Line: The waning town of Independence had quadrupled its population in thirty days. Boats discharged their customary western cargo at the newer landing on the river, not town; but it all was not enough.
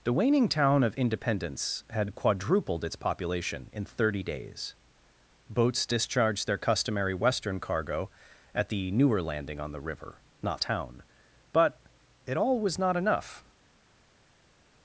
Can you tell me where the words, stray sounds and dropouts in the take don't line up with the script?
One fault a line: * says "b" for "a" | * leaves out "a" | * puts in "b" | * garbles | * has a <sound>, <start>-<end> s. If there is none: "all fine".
all fine